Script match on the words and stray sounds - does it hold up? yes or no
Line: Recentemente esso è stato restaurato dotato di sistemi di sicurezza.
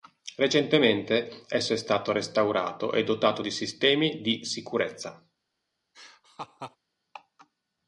no